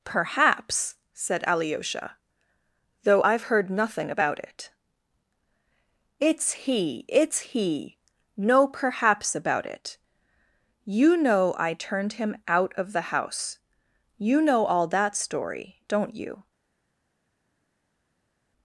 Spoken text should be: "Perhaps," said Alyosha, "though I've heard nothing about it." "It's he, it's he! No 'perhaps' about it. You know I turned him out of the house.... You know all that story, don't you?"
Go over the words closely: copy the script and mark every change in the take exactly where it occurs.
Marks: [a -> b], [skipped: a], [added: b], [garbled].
"Perhaps," said Alyosha, "though I've heard nothing about it." "It's he, it's he! No 'perhaps' about it. You know I turned him out of the house.... You know all that story, don't you?"